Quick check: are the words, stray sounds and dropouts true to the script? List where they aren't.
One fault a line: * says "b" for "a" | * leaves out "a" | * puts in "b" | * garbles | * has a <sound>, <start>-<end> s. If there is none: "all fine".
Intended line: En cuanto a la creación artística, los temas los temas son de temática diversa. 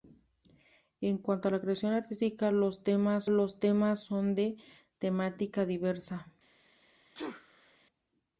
* has a sneeze, 7.1-7.8 s